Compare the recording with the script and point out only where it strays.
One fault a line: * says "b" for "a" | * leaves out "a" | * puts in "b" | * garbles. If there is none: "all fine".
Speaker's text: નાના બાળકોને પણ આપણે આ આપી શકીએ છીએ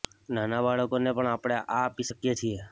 all fine